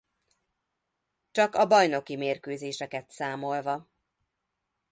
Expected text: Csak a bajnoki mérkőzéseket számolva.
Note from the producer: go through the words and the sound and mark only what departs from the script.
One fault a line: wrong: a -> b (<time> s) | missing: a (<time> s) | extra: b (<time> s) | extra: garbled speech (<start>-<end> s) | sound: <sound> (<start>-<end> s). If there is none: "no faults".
no faults